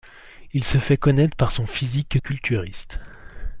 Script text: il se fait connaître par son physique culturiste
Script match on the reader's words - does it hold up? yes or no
yes